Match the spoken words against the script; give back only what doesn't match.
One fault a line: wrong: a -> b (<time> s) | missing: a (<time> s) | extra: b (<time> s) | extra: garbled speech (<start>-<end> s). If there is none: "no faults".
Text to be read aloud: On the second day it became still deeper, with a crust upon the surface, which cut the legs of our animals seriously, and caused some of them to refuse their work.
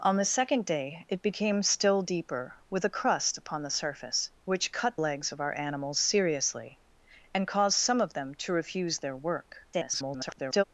missing: the (5.0 s)
extra: garbled speech (9.7-10.6 s)